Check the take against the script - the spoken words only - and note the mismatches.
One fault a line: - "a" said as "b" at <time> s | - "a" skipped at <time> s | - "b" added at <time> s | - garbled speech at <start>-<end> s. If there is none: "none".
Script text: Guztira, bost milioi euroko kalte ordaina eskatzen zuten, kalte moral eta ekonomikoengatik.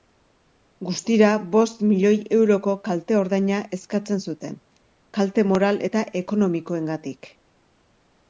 none